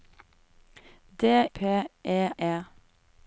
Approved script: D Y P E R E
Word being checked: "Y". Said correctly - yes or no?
no